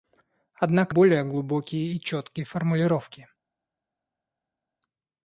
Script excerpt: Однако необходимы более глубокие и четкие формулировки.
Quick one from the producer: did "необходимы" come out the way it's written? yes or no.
no